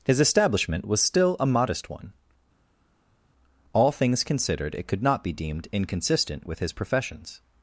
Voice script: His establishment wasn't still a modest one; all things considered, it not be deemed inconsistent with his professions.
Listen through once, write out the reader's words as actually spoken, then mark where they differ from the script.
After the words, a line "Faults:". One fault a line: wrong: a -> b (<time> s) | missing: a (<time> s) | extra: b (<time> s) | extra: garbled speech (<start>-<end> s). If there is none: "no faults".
His establishment was still a modest one; all things considered, it could not be deemed inconsistent with his professions.
Faults:
wrong: wasn't -> was (0.8 s)
extra: could (4.9 s)